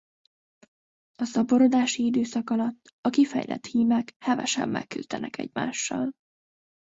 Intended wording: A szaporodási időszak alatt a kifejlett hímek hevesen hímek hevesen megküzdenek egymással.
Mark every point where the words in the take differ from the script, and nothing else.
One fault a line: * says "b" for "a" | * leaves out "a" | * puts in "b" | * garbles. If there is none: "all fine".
* leaves out "hímek hevesen"